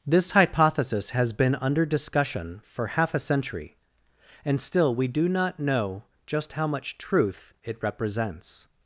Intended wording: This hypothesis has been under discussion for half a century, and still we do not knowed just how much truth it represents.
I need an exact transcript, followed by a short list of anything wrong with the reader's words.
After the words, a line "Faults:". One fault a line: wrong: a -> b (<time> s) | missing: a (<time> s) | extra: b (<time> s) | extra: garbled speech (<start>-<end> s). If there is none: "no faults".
This hypothesis has been under discussion for half a century, and still we do not know just how much truth it represents.
Faults:
wrong: knowed -> know (5.6 s)